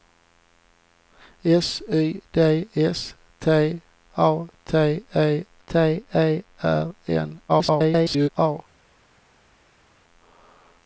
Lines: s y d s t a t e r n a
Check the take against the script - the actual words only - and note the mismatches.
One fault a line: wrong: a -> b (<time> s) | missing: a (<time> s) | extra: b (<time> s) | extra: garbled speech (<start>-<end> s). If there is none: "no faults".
extra: t e (5.6 s)
extra: garbled speech (7.5-8.3 s)